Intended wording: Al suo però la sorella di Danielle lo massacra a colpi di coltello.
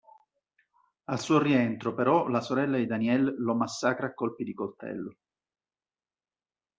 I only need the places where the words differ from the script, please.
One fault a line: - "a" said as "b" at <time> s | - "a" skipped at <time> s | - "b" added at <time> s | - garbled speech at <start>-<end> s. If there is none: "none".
- "rientro" added at 1.4 s